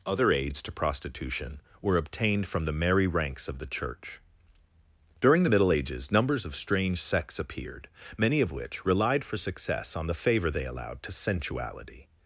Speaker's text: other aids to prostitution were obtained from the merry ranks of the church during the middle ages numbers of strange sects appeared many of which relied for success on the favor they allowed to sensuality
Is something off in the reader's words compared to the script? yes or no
no